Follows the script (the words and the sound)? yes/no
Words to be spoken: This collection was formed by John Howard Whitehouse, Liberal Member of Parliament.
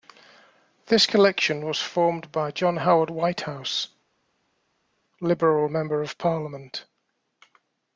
yes